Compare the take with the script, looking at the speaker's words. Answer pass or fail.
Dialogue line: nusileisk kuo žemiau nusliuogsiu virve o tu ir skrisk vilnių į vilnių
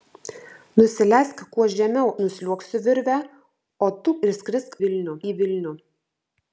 pass